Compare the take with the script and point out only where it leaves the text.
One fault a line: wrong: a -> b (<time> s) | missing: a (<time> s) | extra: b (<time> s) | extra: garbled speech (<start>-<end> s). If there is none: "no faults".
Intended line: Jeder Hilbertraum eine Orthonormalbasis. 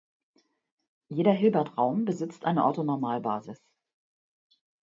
extra: besitzt (2.0 s)